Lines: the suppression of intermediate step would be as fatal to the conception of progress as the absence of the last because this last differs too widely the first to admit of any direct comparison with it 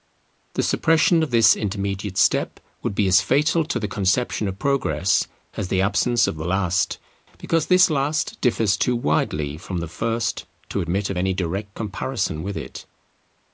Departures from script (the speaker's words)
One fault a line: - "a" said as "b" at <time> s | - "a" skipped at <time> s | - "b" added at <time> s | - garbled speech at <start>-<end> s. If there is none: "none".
- "this" added at 1.3 s
- "from" added at 9.6 s